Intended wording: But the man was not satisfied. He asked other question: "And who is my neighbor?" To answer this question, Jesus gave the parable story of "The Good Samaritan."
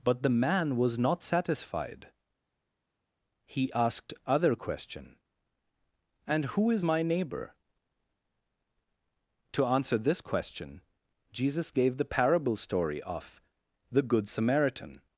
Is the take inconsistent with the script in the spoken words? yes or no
no